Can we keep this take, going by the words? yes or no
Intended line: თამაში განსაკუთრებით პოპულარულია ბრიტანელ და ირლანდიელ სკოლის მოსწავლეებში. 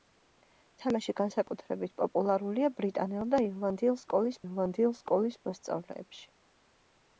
no